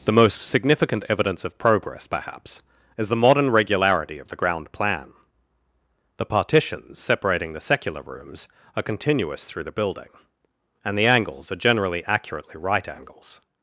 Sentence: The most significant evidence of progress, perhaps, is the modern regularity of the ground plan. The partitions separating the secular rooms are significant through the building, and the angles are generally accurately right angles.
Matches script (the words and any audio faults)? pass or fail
fail